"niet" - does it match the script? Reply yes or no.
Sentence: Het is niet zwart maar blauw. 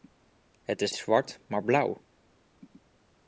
no